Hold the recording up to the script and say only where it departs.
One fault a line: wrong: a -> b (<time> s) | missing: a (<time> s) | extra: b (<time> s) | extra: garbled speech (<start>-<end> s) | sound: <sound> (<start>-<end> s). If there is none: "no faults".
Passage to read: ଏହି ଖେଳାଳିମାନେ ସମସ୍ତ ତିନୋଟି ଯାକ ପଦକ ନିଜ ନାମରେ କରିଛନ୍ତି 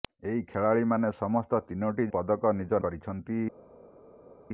missing: ଯାକ (2.1 s)
missing: ନାମରେ (2.8 s)